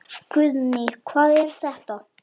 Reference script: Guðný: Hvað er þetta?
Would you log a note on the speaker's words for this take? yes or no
no